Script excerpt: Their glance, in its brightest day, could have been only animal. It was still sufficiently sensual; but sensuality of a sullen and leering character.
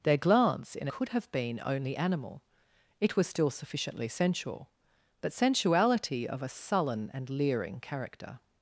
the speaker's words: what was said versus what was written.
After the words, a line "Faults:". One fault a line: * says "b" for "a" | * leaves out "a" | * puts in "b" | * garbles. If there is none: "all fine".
Their glance, in could have been only animal. It was still sufficiently sensual; but sensuality of a sullen and leering character.
Faults:
* leaves out "its brightest day"